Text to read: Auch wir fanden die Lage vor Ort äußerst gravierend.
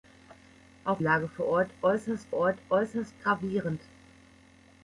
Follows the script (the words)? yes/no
no